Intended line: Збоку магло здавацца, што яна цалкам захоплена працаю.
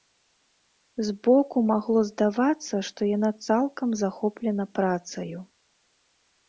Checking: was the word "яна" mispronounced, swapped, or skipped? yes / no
no